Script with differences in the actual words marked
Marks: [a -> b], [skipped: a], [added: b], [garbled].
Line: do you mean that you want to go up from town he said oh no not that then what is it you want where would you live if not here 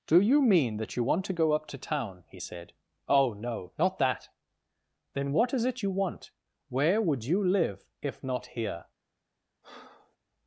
do you mean that you want to go up [from -> to] town he said oh no not that then what is it you want where would you live if not here